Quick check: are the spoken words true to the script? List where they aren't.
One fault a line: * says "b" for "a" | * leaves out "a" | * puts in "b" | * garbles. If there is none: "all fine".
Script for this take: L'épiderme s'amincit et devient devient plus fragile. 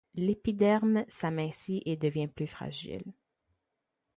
* leaves out "devient"